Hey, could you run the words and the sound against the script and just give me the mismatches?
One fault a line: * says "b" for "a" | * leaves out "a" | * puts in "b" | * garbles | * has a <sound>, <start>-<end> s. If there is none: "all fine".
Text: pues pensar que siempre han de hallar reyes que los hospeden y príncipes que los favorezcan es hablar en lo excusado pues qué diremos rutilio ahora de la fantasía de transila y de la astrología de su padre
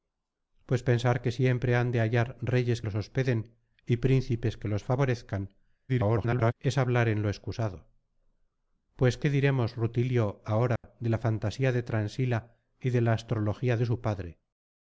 * leaves out "que"
* garbles
* has a dropout, 10.8-10.8 s